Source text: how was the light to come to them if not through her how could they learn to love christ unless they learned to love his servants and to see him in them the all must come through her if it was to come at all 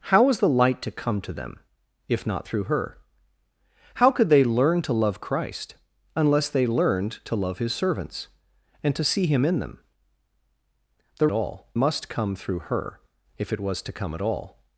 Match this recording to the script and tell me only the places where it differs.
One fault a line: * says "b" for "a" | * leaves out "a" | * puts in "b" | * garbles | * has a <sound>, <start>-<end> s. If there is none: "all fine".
all fine